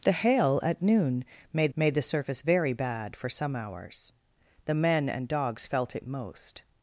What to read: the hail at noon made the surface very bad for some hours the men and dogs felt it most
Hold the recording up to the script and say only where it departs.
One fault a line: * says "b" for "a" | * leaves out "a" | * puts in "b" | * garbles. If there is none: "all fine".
* puts in "made"